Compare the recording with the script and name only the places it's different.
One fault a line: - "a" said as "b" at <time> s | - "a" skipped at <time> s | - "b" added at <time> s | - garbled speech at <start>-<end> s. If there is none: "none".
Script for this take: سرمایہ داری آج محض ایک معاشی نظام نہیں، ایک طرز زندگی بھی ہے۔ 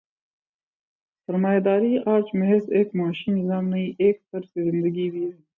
none